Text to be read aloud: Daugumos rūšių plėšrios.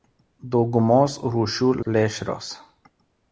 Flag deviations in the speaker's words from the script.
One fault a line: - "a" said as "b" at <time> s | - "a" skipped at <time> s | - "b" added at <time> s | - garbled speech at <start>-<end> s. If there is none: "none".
none